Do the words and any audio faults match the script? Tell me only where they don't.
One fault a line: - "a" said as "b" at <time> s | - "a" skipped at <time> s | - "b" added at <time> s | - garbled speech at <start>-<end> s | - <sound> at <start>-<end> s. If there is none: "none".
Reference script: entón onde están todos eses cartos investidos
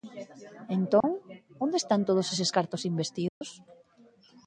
- dropout at 1.0-1.0 s
- dropout at 3.3-3.4 s